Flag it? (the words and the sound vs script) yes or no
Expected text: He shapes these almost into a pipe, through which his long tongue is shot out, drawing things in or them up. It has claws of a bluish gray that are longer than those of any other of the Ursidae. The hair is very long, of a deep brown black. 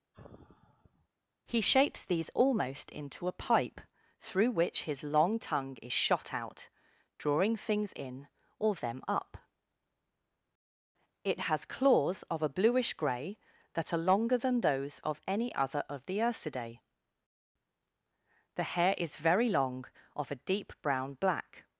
yes